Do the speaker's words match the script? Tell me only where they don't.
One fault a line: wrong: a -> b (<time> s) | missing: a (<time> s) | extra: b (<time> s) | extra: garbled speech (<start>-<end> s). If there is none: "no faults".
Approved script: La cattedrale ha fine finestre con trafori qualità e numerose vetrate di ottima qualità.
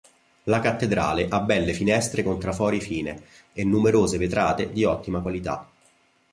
wrong: fine -> belle (1.4 s)
wrong: qualità -> fine (2.8 s)